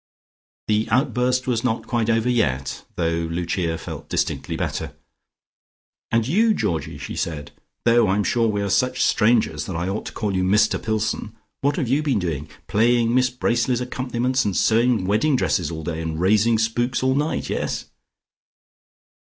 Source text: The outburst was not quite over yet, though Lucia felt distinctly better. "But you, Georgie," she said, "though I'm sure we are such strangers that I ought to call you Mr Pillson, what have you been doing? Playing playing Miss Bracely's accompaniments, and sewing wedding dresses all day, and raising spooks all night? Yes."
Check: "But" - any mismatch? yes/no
yes